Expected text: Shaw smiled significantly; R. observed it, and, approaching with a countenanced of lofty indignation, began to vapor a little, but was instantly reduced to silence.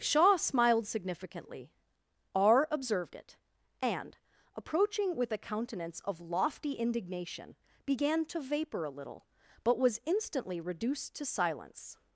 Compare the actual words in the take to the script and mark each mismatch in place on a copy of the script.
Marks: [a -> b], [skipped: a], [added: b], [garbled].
Shaw smiled significantly; R. observed it, and, approaching with a [countenanced -> countenance] of lofty indignation, began to vapor a little, but was instantly reduced to silence.